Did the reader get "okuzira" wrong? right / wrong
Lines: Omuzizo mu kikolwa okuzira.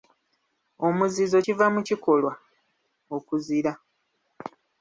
right